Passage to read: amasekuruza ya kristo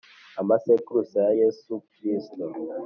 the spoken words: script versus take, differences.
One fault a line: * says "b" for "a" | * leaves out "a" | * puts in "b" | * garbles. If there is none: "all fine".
* puts in "yesu"